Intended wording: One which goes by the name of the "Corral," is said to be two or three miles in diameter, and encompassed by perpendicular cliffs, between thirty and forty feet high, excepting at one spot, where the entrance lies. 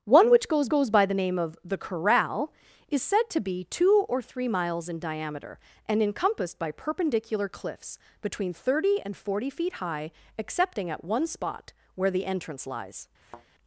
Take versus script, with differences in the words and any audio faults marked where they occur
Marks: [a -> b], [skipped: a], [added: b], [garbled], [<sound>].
One which goes [added: goes] by the name of the "Corral," is said to be two or three miles in diameter, and encompassed by perpendicular cliffs, between thirty and forty feet high, excepting at one spot, where the entrance lies. [thud]